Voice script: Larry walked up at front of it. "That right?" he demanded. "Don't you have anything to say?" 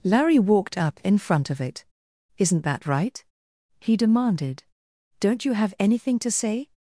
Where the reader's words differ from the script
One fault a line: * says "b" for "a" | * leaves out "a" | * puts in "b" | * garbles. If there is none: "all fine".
* says "in" for "at"
* puts in "Isn't"